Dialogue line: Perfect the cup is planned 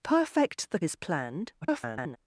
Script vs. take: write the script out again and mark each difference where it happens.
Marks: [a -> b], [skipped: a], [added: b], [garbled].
Perfect the [skipped: cup] is planned [garbled]